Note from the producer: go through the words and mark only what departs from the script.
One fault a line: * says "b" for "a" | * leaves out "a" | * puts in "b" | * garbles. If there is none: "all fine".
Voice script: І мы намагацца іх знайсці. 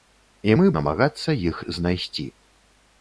all fine